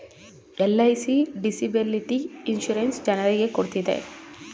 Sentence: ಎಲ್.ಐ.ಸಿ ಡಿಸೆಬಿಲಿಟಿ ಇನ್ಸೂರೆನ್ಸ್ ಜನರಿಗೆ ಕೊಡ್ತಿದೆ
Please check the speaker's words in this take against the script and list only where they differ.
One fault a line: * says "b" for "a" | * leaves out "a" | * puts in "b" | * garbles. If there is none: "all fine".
all fine